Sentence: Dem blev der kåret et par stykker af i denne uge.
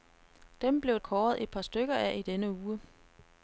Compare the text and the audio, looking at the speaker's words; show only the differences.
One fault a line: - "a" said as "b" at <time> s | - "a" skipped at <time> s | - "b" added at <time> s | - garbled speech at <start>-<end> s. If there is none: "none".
- "der" skipped at 1.0 s